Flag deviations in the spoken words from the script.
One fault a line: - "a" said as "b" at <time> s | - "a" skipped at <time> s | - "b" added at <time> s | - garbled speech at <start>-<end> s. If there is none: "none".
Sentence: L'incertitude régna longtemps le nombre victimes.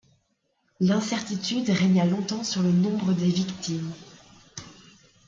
- "sur" added at 2.4 s
- "des" added at 3.1 s